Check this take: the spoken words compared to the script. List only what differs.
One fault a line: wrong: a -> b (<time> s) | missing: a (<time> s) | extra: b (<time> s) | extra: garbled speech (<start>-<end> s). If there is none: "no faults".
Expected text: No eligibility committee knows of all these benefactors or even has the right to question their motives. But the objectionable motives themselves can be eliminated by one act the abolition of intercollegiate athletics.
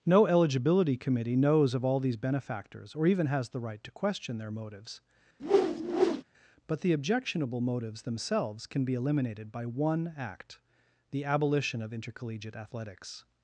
no faults